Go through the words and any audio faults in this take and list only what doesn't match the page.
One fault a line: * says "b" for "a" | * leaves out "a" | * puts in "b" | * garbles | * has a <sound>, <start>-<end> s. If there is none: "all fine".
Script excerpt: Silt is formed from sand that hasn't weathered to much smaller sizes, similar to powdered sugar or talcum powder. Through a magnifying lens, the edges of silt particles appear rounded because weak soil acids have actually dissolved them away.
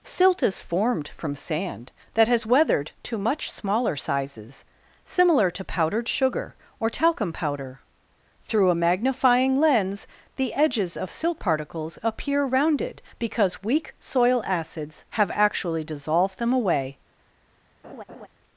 * says "has" for "hasn't"
* has a laugh, 17.8-18.3 s